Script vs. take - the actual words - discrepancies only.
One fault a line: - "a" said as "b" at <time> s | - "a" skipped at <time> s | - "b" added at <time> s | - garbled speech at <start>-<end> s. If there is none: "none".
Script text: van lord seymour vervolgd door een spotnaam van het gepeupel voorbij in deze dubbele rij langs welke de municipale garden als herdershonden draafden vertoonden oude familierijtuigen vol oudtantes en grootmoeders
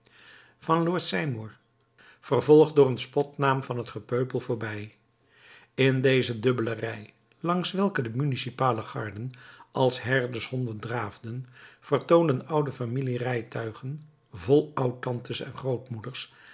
none